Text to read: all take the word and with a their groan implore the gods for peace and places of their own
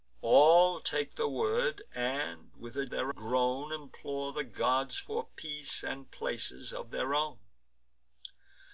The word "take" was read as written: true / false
true